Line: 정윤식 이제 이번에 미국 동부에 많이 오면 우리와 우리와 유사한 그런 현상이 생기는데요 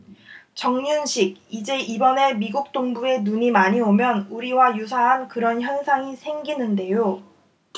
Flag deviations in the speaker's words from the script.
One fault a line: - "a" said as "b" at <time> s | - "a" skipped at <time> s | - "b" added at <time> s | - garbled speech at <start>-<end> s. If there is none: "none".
- "눈이" added at 3.2 s
- "우리와" skipped at 4.8 s